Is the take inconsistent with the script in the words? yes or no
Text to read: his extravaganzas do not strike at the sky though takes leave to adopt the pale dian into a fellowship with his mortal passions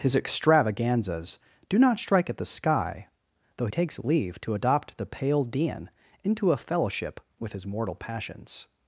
no